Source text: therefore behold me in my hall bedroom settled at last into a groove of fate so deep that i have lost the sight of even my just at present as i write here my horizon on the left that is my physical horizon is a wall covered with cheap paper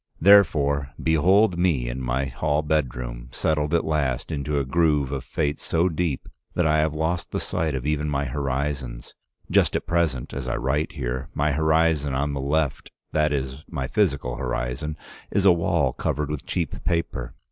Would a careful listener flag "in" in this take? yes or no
no